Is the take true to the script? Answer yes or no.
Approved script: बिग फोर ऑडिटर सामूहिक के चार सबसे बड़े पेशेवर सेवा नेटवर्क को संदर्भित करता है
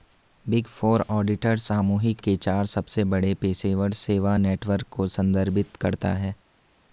yes